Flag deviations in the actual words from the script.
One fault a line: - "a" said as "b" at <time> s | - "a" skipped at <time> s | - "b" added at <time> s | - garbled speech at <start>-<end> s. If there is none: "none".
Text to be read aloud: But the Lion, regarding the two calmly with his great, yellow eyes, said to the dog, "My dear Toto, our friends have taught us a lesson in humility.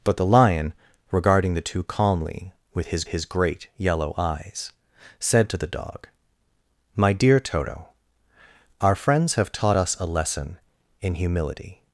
- "his" added at 3.1 s